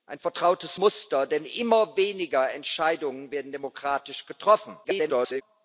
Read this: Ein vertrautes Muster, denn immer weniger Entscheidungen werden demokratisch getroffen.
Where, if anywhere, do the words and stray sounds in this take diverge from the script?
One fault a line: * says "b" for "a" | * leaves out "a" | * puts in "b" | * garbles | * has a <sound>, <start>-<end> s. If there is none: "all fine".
* garbles